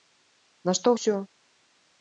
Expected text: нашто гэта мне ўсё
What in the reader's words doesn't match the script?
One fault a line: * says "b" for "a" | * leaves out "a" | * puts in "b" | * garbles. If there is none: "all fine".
* leaves out "гэта мне"